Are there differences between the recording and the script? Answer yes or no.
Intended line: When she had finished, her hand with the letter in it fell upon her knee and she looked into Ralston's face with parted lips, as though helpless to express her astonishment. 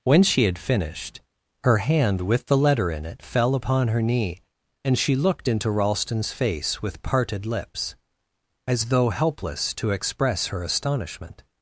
no